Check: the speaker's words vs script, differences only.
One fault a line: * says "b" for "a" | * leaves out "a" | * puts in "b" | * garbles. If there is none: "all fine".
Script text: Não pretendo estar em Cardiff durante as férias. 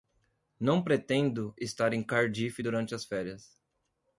all fine